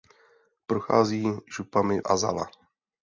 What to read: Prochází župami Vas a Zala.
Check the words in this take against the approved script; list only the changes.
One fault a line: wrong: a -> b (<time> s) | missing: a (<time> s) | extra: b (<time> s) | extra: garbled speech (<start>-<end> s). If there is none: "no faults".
missing: Vas (2.0 s)